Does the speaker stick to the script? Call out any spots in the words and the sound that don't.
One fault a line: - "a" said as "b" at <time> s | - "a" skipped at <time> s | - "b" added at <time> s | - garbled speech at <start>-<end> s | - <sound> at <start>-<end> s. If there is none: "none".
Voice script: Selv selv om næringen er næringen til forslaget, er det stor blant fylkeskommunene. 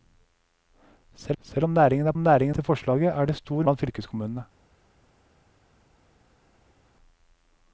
none